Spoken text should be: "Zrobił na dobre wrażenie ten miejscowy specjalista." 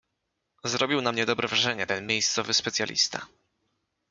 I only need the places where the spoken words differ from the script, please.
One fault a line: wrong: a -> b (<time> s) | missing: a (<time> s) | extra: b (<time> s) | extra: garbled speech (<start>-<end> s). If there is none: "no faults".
extra: mnie (1.1 s)